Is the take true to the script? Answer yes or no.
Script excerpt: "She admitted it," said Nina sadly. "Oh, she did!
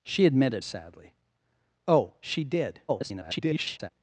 no